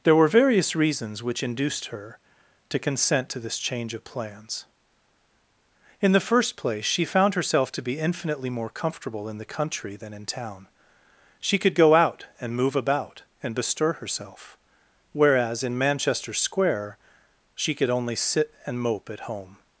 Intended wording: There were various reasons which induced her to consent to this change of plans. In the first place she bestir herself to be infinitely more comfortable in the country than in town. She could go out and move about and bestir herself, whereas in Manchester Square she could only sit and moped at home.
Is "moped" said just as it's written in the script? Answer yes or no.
no